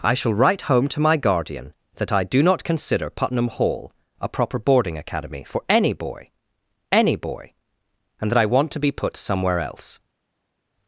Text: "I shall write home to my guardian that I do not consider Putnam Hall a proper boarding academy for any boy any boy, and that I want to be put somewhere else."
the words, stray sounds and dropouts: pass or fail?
pass